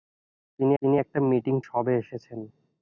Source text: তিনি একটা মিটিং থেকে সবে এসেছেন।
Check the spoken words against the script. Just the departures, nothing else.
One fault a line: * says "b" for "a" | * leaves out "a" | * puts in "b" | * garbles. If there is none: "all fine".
* puts in "তিনি"
* leaves out "থেকে"